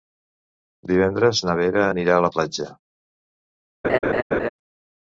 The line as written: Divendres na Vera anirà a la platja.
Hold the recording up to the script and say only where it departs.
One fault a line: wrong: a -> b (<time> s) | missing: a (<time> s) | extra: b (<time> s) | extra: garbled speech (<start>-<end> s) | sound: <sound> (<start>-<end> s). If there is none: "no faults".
sound: laugh (3.8-4.5 s)